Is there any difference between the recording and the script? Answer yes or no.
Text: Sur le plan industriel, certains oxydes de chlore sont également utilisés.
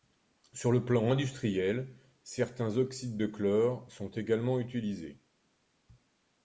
no